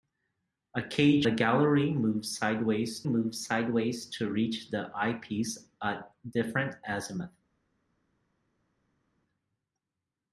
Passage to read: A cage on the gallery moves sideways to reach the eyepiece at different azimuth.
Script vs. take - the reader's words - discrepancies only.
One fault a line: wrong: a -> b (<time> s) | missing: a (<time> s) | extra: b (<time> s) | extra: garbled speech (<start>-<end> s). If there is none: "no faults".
missing: on (1.3 s)
extra: moves sideways (3.0 s)